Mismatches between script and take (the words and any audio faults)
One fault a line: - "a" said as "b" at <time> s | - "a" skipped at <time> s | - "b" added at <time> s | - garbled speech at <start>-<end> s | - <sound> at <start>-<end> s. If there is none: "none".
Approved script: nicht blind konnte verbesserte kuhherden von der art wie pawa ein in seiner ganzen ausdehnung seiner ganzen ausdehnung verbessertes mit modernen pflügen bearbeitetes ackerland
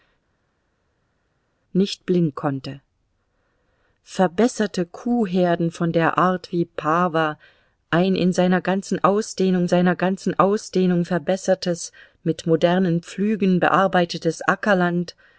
none